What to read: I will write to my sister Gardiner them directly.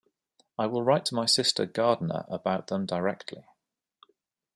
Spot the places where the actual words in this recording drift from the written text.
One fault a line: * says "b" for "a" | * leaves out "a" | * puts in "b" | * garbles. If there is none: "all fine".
* puts in "about"